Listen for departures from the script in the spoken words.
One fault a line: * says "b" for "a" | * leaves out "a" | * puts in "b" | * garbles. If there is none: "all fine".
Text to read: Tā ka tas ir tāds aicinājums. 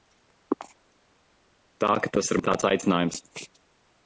all fine